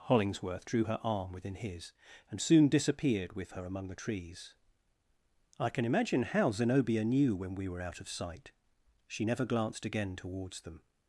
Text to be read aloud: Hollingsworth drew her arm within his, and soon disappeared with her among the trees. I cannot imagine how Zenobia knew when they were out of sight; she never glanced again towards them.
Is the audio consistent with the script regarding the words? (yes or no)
no